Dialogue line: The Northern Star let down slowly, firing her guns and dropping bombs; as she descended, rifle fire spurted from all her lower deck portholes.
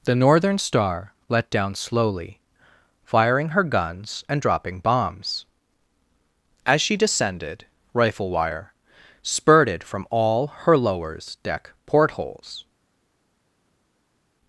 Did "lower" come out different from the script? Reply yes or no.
yes